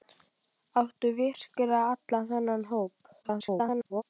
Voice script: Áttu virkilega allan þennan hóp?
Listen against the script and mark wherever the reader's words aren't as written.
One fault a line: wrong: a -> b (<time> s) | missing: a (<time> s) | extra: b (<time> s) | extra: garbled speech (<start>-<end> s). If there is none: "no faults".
extra: garbled speech (3.2-4.0 s)